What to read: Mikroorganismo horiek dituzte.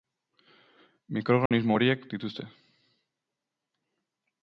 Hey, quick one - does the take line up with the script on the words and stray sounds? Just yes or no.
no